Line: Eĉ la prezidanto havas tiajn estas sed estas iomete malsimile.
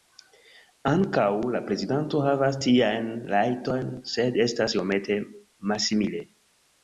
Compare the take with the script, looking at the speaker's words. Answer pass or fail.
fail